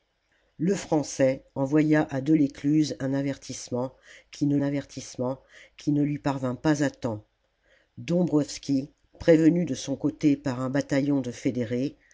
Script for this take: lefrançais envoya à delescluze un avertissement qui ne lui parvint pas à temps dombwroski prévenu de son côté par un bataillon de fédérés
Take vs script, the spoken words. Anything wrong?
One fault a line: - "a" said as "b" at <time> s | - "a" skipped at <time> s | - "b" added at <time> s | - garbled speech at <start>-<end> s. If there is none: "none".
- "avertissement qui ne" added at 4.6 s